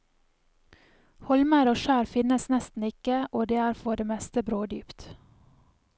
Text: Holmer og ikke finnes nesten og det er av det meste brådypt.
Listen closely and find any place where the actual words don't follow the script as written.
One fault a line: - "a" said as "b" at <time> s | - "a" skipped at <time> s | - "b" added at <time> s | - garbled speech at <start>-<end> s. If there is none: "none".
- "ikke" said as "skjær" at 1.8 s
- "ikke" added at 2.9 s
- "av" said as "for" at 3.8 s